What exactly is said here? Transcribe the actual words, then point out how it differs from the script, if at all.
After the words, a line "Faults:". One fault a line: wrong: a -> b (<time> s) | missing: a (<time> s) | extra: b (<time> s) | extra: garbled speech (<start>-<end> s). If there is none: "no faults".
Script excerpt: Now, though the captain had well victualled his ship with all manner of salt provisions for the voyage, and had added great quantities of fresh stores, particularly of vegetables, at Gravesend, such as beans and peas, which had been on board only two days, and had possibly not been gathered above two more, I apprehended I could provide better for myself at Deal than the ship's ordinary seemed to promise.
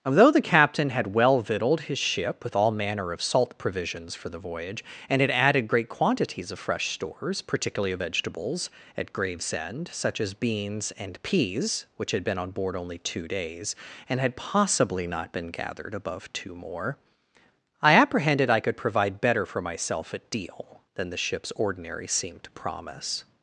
Although the captain had well victualled his ship with all manner of salt provisions for the voyage, and had added great quantities of fresh stores, particularly of vegetables, at Gravesend, such as beans and peas, which had been on board only two days, and had possibly not been gathered above two more, I apprehended I could provide better for myself at Deal than the ship's ordinary seemed to promise.
Faults:
wrong: Now though -> Although (0.0 s)